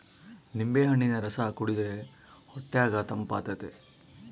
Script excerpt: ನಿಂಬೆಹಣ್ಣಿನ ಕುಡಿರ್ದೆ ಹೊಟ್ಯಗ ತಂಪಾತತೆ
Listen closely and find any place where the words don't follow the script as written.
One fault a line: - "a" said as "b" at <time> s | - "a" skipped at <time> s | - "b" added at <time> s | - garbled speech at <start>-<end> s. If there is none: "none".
- "ರಸ" added at 1.2 s